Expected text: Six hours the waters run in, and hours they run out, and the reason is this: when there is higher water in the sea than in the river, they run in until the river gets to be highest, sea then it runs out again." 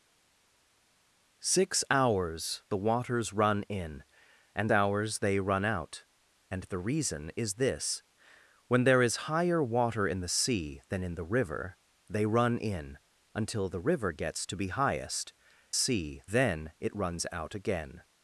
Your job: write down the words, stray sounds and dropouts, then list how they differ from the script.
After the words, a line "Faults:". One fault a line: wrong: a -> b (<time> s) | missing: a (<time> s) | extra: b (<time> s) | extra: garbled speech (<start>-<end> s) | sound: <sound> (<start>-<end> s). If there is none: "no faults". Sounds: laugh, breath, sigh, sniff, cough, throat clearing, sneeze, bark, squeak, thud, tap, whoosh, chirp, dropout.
Six hours the waters run in, and hours they run out, and the reason is this: when there is higher water in the sea than in the river, they run in until the river gets to be highest, sea then it runs out again."
Faults:
no faults